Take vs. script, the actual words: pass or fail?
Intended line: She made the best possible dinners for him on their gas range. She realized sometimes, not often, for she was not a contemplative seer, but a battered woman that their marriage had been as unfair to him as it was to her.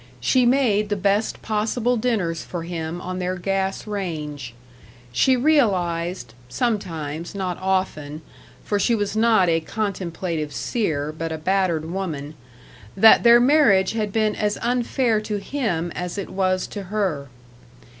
pass